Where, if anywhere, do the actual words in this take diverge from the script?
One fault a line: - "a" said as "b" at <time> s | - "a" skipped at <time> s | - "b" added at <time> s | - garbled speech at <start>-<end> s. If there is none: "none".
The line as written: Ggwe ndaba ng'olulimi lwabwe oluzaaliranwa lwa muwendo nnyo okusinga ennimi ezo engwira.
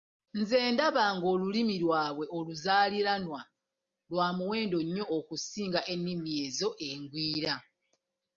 - "Ggwe" said as "Nze" at 0.4 s